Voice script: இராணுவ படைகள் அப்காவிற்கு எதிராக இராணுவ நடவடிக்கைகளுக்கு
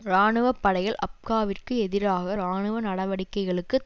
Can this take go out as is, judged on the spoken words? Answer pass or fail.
pass